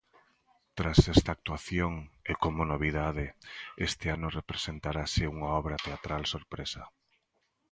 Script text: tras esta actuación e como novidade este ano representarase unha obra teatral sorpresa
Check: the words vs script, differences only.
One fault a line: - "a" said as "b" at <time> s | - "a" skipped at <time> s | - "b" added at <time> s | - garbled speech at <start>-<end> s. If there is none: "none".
none